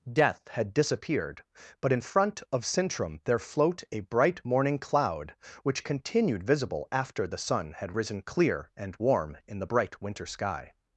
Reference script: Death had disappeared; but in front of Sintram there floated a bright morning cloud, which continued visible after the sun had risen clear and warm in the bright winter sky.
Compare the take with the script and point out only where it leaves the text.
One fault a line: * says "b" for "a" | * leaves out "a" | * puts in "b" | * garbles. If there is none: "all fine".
* says "float" for "floated"